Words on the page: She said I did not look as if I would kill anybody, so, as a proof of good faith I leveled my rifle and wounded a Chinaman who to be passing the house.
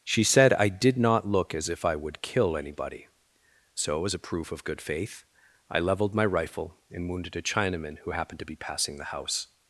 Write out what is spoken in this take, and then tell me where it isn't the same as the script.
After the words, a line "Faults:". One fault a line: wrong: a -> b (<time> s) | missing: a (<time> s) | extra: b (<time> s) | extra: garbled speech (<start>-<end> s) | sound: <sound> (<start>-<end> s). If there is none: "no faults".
She said I did not look as if I would kill anybody, so, as a proof of good faith I leveled my rifle and wounded a Chinaman who happened to be passing the house.
Faults:
extra: happened (8.1 s)